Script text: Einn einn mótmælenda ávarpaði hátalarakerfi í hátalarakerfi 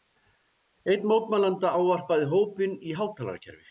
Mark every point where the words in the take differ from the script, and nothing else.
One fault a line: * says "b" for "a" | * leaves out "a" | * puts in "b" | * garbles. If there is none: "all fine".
* leaves out "einn"
* says "hópinn" for "hátalarakerfi"